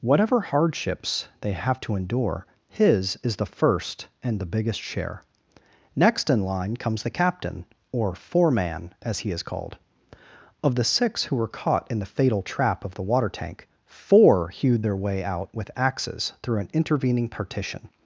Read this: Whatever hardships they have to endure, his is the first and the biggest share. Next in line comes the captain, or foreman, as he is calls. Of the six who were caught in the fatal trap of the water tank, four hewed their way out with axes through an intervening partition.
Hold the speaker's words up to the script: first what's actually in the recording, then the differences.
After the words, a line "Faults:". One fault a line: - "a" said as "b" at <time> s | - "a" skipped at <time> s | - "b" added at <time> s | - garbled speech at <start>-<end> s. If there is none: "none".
Whatever hardships they have to endure, his is the first and the biggest share. Next in line comes the captain, or foreman, as he is called. Of the six who were caught in the fatal trap of the water tank, four hewed their way out with axes through an intervening partition.
Faults:
- "calls" said as "called" at 9.4 s